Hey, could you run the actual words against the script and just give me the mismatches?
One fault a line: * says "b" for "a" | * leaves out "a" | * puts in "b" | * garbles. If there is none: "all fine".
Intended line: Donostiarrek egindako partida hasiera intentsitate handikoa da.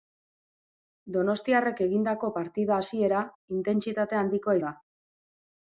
all fine